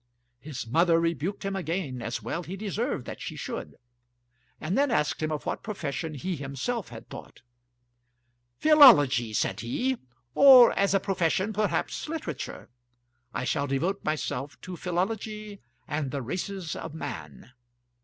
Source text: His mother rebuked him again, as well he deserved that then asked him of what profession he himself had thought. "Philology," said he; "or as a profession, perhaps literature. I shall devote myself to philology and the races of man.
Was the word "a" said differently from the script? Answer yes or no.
no